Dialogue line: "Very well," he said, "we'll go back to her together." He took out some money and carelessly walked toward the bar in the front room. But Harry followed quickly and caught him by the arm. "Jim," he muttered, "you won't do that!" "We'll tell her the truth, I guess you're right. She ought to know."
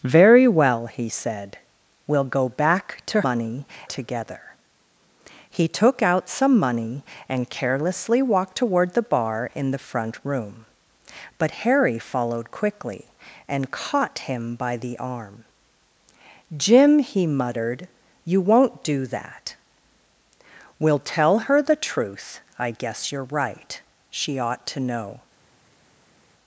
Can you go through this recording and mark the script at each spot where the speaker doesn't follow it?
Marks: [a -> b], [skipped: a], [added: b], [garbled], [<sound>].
"Very well," he said, "we'll go back to [her -> money] together." He took out some money and carelessly walked toward the bar in the front room. But Harry followed quickly and caught him by the arm. "Jim," he muttered, "you won't do that!" "We'll tell her the truth, I guess you're right. She ought to know."